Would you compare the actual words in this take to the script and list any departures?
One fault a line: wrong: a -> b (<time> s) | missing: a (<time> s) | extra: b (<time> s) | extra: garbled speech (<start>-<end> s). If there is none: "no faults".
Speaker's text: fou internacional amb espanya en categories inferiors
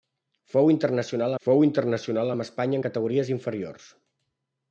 extra: fou internacional (1.5 s)